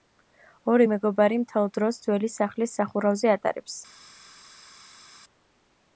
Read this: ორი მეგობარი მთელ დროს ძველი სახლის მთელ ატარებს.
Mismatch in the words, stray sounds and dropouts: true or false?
true